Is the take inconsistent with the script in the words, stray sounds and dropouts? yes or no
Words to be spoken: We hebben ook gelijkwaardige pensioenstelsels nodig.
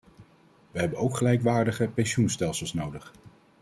no